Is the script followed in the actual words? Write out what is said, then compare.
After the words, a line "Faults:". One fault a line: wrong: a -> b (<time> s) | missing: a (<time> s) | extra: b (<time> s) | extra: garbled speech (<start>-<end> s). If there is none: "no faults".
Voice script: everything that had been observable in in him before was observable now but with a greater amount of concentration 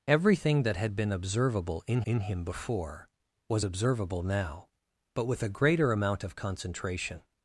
everything that had been observable in in him before was observable now but with a greater amount of concentration
Faults:
no faults